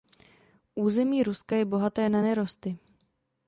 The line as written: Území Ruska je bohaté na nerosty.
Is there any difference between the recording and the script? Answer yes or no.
no